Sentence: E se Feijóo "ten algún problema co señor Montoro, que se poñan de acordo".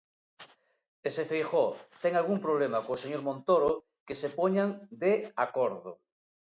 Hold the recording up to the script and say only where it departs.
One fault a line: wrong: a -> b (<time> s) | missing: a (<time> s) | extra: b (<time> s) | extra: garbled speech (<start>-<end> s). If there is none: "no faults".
no faults